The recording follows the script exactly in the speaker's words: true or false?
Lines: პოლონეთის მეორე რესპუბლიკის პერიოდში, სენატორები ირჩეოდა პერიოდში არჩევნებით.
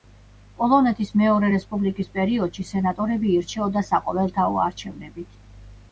false